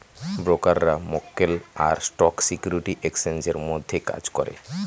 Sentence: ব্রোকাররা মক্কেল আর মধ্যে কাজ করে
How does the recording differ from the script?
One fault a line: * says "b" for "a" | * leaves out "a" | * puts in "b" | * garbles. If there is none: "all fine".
* puts in "স্টক সিকিউরিটি এক্সচেঞ্জের"